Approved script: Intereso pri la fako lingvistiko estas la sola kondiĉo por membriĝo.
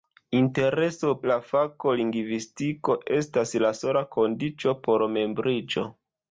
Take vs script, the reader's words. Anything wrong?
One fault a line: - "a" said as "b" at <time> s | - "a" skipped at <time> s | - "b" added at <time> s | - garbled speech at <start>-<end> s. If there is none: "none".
- "pri" skipped at 1.1 s